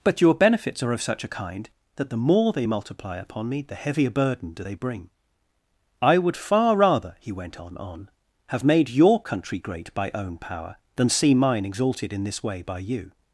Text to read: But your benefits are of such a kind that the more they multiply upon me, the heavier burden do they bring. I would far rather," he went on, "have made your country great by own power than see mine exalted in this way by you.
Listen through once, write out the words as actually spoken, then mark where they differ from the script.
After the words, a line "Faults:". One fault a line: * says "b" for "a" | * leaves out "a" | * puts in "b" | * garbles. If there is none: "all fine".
But your benefits are of such a kind that the more they multiply upon me, the heavier burden do they bring. I would far rather," he went on on, "have made your country great by own power than see mine exalted in this way by you.
Faults:
* puts in "on"